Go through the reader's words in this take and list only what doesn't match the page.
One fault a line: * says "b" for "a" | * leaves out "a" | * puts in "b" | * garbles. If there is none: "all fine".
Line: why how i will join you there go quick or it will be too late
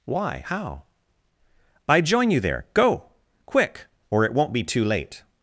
* leaves out "will"
* says "won't" for "will"